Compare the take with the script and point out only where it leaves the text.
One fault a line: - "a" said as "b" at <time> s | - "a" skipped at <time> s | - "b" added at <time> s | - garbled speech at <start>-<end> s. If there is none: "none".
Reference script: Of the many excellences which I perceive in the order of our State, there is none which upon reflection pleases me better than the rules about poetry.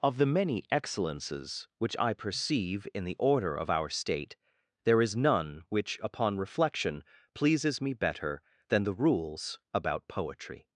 none